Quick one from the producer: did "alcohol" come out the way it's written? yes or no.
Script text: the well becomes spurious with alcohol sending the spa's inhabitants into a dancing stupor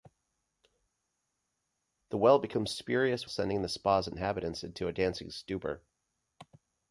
no